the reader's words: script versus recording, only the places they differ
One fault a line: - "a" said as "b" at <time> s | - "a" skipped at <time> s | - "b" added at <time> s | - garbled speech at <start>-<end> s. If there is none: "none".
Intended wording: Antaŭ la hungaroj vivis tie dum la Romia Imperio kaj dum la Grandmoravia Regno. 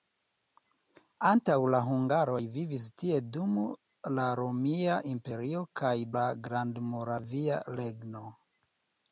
- "dum" skipped at 6.0 s